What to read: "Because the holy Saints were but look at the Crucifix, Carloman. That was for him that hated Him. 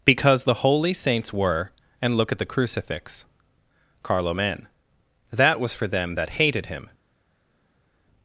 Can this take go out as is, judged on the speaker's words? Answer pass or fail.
fail